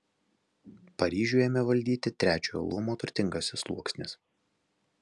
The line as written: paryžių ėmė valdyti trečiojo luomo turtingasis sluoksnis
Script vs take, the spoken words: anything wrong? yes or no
no